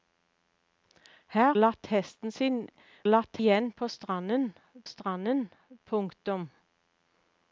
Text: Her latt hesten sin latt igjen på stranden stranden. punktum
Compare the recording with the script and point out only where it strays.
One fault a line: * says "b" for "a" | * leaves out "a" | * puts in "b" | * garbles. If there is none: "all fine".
all fine